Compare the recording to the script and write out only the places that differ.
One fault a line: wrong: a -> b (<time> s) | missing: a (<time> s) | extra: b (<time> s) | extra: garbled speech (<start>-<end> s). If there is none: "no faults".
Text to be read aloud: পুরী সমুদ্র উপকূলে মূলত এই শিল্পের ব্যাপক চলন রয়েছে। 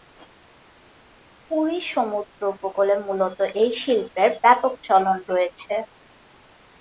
no faults